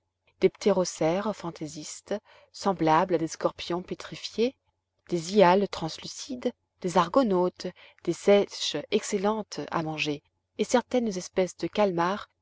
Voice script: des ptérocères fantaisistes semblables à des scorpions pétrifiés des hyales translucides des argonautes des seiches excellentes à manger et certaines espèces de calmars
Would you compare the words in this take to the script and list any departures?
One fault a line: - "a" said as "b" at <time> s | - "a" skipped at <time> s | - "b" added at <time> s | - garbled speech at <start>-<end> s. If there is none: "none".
none